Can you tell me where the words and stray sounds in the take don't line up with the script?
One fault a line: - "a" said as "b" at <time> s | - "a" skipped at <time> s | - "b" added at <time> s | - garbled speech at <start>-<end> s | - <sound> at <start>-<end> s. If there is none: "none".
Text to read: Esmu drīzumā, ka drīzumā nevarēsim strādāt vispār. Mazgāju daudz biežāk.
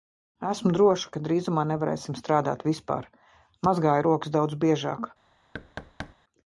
- "drīzumā" said as "droša" at 0.8 s
- "rokas" added at 4.0 s
- thud at 5.5-6.1 s